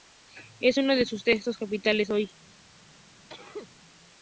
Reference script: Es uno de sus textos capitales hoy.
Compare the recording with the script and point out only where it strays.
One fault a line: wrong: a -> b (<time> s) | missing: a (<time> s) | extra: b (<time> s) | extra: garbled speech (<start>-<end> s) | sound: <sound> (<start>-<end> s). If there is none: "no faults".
sound: sneeze (3.3-3.7 s)